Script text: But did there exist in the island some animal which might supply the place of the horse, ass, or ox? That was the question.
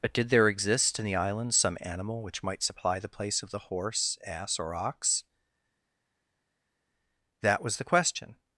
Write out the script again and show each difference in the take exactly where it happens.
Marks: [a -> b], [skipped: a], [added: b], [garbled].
But did there exist in the island some animal which might supply the place of the horse, ass, or ox? That was the question.